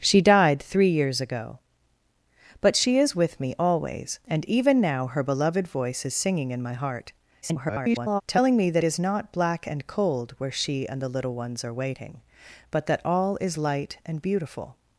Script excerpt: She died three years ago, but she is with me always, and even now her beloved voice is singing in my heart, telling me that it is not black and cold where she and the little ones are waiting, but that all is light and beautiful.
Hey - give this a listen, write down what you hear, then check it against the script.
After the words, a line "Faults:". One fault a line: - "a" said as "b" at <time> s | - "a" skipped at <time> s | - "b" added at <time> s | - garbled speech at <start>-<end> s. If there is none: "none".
She died three years ago, but she is with me always, and even now her beloved voice is singing in my heart, [garbled] telling me that is not black and cold where she and the little ones are waiting, but that all is light and beautiful.
Faults:
- garbled speech at 7.4-8.2 s
- "it" skipped at 8.8 s